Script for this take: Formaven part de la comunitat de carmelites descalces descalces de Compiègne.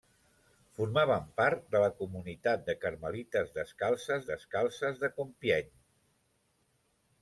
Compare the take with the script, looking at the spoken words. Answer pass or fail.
pass